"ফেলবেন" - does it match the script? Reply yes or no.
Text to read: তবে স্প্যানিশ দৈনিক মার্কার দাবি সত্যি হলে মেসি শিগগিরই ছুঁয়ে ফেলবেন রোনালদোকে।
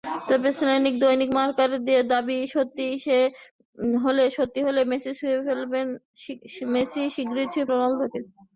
no